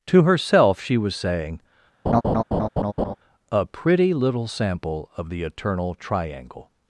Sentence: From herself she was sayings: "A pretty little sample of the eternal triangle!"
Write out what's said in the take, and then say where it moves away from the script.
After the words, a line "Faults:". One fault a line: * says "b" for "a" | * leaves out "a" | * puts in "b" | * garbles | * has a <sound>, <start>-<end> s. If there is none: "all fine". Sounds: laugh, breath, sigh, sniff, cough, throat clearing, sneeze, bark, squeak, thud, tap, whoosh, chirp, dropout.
To herself she was saying: "A pretty little sample of the eternal triangle!"
Faults:
* says "To" for "From"
* says "saying" for "sayings"
* has a laugh, 2.1-3.2 s